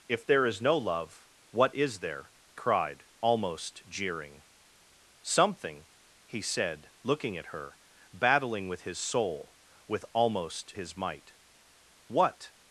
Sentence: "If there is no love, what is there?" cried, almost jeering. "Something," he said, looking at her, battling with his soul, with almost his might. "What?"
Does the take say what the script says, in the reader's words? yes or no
yes